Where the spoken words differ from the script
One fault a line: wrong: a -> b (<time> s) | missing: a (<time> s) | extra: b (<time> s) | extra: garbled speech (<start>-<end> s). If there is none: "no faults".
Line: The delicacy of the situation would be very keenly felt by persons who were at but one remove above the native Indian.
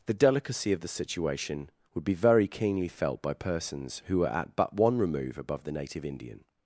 no faults